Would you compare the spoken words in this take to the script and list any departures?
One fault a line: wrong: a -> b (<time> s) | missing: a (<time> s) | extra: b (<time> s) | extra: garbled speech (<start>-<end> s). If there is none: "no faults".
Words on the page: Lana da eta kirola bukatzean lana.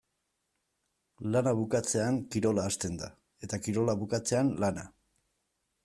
extra: bukatzean kirola hasten (1.6 s)